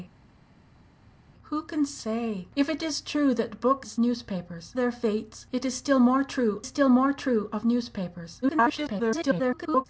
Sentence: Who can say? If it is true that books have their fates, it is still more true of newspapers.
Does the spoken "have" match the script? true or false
false